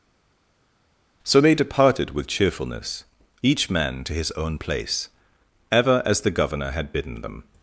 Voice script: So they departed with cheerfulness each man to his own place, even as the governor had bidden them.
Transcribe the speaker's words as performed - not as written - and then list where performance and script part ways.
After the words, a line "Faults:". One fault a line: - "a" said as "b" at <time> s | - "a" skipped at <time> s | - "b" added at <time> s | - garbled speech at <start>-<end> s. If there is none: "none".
So they departed with cheerfulness each man to his own place, ever as the governor had bidden them.
Faults:
- "even" said as "ever" at 5.7 s